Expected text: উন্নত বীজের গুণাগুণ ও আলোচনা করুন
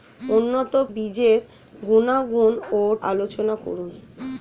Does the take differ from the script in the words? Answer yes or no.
no